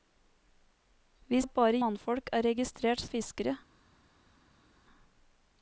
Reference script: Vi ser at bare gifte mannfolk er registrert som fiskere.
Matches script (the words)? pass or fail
fail